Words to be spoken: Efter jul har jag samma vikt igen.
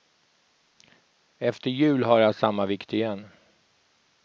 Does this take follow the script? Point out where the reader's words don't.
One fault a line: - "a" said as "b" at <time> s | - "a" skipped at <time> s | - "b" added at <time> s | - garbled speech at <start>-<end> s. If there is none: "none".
none